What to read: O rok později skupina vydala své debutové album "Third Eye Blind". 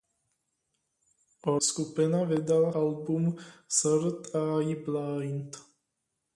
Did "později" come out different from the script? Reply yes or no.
yes